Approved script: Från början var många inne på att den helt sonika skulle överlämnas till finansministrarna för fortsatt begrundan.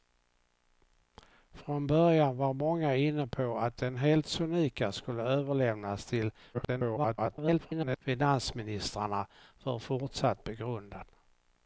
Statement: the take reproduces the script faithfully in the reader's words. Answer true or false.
false